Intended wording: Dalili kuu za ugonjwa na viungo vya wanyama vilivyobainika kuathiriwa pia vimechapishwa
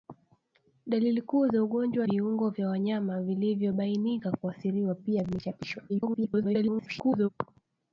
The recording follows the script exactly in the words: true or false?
false